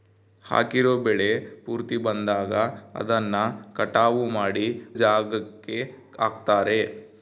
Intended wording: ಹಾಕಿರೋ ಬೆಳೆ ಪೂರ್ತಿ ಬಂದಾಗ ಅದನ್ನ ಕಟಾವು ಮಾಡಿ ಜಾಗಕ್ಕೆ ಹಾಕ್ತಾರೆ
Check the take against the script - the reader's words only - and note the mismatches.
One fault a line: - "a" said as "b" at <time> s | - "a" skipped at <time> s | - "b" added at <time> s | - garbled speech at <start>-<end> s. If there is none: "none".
none